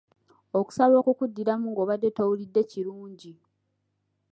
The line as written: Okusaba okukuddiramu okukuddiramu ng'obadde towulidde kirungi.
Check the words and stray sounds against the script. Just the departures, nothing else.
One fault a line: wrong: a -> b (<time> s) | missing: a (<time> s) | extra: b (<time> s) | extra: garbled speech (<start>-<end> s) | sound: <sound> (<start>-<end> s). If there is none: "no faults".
missing: okukuddiramu (1.7 s)